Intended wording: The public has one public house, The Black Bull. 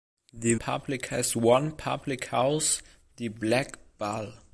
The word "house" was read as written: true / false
true